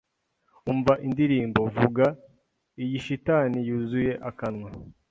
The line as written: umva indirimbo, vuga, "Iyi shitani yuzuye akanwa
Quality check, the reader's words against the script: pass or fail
pass